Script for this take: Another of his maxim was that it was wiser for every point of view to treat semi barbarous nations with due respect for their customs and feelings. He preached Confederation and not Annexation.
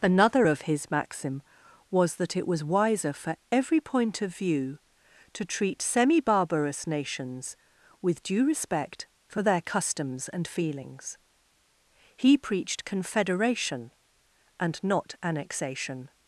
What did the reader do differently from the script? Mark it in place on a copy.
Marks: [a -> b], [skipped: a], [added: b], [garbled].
Another of his maxim was that it was wiser for every point of view to treat semi barbarous nations with due respect for their customs and feelings. He preached Confederation and not Annexation.